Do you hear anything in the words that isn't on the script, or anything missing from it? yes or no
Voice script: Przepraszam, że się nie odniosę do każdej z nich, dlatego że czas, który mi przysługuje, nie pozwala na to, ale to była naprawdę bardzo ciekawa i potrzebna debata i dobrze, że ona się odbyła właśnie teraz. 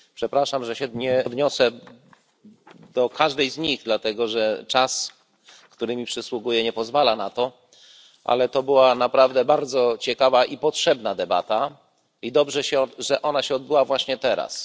yes